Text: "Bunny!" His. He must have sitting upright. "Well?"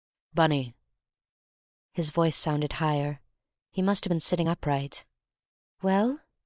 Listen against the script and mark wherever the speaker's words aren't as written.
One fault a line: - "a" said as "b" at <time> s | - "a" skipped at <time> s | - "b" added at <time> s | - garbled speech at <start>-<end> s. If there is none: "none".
- "voice sounded higher" added at 2.1 s
- "been" added at 4.1 s